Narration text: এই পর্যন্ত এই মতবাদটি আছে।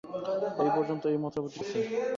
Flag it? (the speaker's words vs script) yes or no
no